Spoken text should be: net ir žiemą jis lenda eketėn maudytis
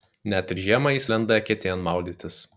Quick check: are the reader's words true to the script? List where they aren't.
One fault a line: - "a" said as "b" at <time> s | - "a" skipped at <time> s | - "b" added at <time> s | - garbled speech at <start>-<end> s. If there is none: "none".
none